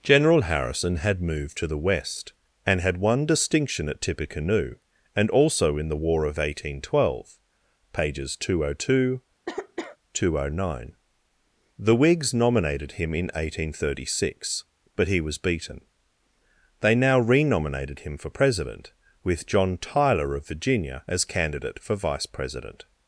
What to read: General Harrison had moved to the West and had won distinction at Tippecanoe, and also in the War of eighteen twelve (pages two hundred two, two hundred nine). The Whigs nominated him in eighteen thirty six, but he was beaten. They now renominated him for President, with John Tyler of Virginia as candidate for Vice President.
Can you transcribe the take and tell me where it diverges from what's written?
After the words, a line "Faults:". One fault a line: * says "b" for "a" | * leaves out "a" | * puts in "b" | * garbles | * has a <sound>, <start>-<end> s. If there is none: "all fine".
General Harrison had moved to the West and had won distinction at Tippecanoe, and also in the War of eighteen twelve (pages two hundred two, two hundred nine). The Whigs nominated him in eighteen thirty six, but he was beaten. They now renominated him for President, with John Tyler of Virginia as candidate for Vice President.
Faults:
* has a cough, 9.4-10.0 s